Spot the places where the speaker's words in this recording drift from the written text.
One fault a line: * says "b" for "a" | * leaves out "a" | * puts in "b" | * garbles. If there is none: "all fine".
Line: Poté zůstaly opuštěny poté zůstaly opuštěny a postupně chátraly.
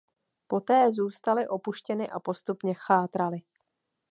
* leaves out "poté zůstaly opuštěny"